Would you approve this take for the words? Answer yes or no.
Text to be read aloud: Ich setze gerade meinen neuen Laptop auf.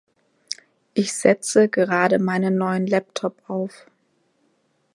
yes